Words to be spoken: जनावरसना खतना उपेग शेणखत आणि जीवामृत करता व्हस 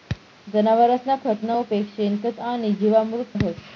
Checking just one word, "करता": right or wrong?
wrong